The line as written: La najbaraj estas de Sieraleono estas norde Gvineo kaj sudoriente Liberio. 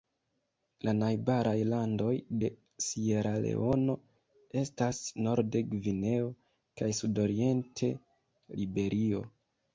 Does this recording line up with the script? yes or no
no